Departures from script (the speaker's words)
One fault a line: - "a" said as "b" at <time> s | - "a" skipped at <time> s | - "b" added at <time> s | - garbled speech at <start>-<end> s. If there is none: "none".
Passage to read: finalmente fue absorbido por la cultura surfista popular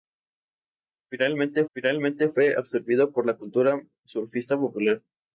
- "finalmente" added at 1.7 s